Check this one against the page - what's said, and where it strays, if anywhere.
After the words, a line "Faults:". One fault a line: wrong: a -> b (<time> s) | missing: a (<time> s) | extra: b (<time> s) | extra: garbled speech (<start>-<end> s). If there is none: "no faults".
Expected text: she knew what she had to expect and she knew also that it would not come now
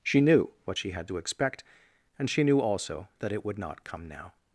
she knew what she had to expect and she knew also that it would not come now
Faults:
no faults